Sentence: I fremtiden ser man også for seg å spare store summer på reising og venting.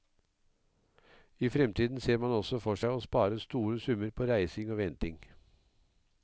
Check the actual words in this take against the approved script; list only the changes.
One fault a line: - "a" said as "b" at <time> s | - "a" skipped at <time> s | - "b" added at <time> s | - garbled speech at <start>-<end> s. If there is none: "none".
none